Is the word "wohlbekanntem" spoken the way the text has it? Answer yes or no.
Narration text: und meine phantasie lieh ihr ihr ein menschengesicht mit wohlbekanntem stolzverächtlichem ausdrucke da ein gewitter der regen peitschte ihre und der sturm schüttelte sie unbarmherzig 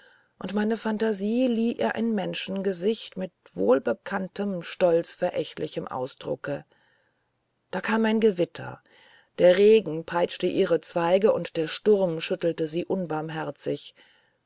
yes